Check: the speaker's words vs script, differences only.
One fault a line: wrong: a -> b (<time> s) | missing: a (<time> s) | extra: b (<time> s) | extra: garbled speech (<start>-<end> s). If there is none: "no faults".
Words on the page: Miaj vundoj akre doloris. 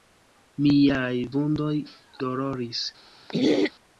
missing: akre (1.7 s)